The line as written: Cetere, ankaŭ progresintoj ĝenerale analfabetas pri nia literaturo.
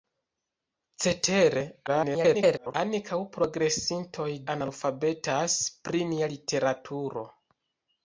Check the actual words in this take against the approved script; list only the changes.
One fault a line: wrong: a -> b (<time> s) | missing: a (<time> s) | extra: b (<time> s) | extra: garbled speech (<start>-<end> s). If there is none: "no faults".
extra: garbled speech (1.9-2.7 s)
missing: ĝenerale (4.3 s)